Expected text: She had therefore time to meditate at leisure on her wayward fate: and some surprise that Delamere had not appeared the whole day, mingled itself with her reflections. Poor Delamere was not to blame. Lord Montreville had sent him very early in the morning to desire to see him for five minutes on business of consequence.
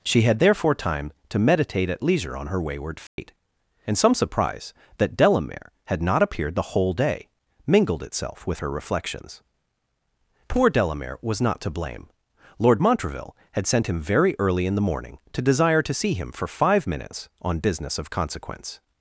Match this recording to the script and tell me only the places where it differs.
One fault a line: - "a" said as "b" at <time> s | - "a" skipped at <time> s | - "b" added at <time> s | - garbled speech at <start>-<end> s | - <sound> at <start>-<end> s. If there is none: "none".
- dropout at 3.1-3.2 s